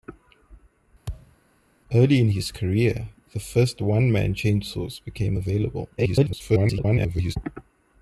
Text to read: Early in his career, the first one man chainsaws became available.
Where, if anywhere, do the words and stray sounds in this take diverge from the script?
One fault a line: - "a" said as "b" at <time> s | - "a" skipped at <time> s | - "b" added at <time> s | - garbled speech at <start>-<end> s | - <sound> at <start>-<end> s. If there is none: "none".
- thud at 1.1-1.4 s
- garbled speech at 6.0-7.4 s